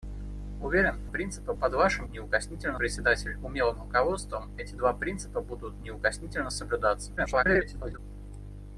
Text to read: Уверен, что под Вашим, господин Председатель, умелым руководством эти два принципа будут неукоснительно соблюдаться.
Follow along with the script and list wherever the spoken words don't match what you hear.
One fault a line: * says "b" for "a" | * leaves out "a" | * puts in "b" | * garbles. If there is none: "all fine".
* says "принципа" for "что"
* says "неукоснительно" for "господин"
* garbles